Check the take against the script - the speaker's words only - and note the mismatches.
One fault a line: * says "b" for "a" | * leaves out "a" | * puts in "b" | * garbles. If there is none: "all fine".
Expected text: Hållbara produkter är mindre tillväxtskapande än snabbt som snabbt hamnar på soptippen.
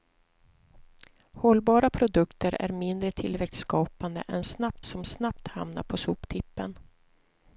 all fine